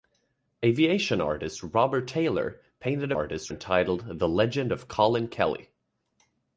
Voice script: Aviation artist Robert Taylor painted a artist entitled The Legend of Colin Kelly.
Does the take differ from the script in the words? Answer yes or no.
no